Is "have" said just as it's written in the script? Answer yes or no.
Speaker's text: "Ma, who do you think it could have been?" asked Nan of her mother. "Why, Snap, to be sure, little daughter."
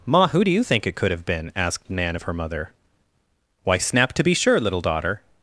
yes